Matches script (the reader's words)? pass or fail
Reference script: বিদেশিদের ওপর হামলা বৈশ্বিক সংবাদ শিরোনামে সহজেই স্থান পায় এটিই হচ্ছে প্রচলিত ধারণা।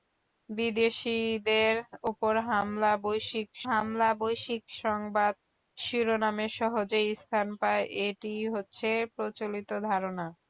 fail